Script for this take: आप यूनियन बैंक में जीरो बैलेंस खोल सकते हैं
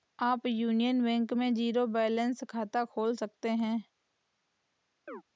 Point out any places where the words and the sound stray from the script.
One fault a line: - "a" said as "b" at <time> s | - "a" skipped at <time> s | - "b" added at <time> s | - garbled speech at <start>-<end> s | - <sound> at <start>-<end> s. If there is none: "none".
- "खाता" added at 2.5 s
- chirp at 5.1-5.2 s